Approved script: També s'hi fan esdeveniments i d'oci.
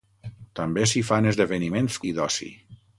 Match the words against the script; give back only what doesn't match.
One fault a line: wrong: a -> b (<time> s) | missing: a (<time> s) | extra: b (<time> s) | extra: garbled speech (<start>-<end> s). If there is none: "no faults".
no faults